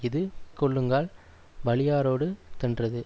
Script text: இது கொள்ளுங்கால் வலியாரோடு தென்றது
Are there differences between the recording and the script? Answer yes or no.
no